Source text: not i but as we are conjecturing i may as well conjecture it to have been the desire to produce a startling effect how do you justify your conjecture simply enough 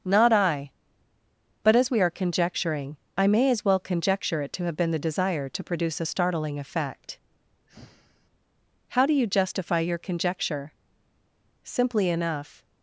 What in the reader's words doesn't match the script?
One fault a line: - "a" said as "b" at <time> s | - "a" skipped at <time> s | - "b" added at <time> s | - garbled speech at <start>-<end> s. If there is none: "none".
none